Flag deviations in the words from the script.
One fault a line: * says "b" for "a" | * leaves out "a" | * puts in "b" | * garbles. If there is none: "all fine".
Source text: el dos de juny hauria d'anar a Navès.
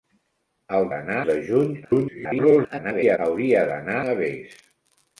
* says "d'anar" for "dos"
* garbles
* leaves out "a"